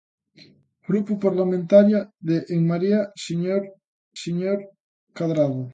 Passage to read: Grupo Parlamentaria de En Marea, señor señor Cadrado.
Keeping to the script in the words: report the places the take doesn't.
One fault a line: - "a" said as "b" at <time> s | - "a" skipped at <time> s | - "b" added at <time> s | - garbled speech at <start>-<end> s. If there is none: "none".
none